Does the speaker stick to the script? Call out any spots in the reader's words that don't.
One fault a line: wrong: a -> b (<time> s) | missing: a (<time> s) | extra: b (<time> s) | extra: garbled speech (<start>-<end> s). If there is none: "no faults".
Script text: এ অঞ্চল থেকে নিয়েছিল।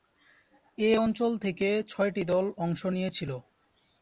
extra: ছয়টি দল অংশ (1.9 s)